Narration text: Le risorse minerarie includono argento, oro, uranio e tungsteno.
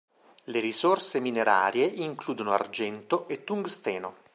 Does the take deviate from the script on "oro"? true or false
true